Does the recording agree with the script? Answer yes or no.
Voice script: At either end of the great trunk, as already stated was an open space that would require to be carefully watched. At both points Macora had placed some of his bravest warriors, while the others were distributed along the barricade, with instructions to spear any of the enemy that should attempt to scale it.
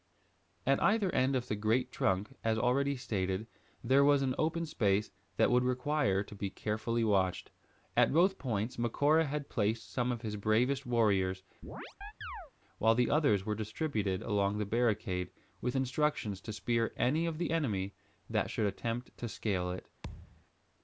no